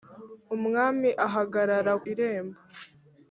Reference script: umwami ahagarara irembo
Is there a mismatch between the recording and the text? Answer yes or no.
no